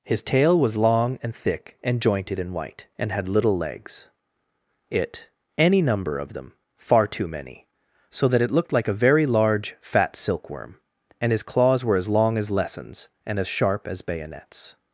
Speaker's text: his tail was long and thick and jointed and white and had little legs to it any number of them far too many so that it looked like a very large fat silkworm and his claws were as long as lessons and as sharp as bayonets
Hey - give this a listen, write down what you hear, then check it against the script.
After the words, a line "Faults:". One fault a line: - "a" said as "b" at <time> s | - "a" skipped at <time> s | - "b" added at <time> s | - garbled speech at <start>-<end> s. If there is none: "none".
his tail was long and thick and jointed and white and had little legs it any number of them far too many so that it looked like a very large fat silkworm and his claws were as long as lessons and as sharp as bayonets
Faults:
- "to" skipped at 4.1 s